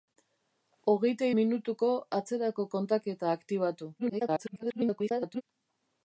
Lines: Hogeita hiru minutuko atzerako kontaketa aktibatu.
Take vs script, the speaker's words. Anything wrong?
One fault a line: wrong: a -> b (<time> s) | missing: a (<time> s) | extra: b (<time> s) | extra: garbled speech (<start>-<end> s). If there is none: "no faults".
missing: hiru (1.3 s)
extra: garbled speech (4.0-5.4 s)